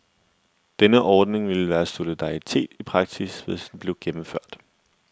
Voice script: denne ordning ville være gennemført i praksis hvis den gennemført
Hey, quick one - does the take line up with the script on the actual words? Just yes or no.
no